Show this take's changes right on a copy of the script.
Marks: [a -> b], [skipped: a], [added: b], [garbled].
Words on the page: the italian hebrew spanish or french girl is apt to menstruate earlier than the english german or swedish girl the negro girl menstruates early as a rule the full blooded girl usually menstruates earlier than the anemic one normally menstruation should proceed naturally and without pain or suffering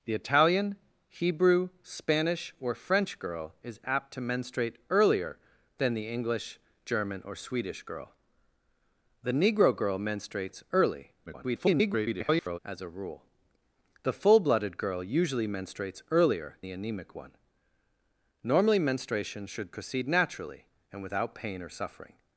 the italian hebrew spanish or french girl is apt to menstruate earlier than the english german or swedish girl the negro girl menstruates early [garbled] as a rule the full blooded girl usually menstruates earlier [skipped: than] the anemic one normally menstruation should proceed naturally and without pain or suffering